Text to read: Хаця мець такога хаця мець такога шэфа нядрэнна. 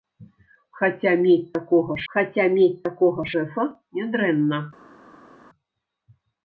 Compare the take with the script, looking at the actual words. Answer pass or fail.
pass